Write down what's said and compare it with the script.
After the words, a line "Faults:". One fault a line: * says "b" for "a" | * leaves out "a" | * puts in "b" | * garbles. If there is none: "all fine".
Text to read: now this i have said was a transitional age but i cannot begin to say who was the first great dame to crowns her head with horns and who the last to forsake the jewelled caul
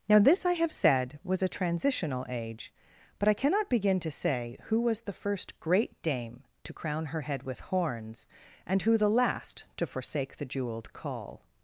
now this i have said was a transitional age but i cannot begin to say who was the first great dame to crown her head with horns and who the last to forsake the jewelled caul
Faults:
* says "crown" for "crowns"